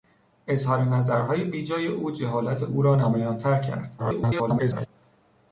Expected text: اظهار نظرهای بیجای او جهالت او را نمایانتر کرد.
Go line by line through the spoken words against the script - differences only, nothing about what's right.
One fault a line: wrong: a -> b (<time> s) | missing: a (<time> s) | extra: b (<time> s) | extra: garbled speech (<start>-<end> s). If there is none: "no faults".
extra: garbled speech (4.0-4.9 s)